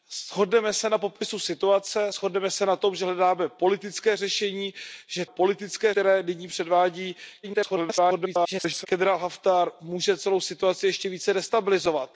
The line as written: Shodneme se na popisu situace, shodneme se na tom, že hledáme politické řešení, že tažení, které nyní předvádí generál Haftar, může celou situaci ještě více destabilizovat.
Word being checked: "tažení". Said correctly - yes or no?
no